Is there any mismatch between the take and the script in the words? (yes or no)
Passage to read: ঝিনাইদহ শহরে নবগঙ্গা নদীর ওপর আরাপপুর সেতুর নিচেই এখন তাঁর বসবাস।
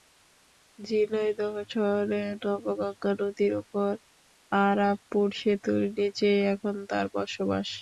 no